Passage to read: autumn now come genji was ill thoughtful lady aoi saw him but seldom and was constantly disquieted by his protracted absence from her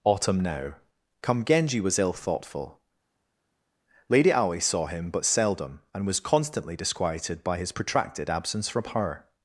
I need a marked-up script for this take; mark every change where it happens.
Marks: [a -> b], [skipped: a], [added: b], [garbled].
autumn now come genji was ill thoughtful lady aoi saw him but seldom and was constantly disquieted by his protracted absence from her